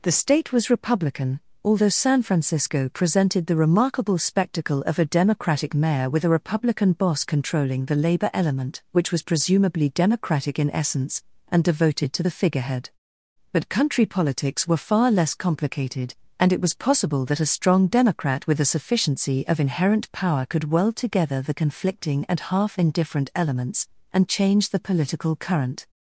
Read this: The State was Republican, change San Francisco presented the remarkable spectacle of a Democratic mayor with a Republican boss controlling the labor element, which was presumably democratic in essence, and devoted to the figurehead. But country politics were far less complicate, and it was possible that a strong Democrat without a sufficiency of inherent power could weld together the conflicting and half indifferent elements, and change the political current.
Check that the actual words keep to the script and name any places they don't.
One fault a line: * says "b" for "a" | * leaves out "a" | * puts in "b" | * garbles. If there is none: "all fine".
* says "although" for "change"
* says "complicated" for "complicate"
* says "with" for "without"